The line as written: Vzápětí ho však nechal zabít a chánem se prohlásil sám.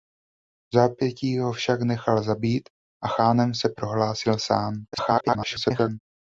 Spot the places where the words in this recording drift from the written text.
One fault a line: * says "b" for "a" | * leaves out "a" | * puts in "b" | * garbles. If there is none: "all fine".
* garbles